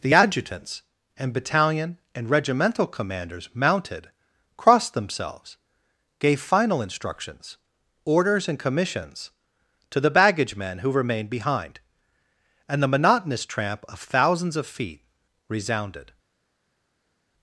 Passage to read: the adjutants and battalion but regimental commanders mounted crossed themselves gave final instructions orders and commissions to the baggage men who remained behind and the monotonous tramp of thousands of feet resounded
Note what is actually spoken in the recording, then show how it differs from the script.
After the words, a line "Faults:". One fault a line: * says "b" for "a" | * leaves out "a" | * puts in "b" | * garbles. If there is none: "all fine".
the adjutants and battalion and regimental commanders mounted crossed themselves gave final instructions orders and commissions to the baggage men who remained behind and the monotonous tramp of thousands of feet resounded
Faults:
* says "and" for "but"